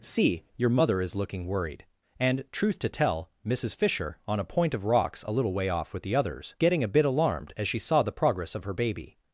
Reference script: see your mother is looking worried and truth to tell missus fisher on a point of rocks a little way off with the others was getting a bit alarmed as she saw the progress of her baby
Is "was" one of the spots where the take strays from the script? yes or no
yes